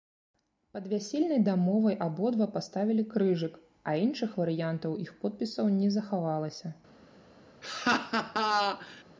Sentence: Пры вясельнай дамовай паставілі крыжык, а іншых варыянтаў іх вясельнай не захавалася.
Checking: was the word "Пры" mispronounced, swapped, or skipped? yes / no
yes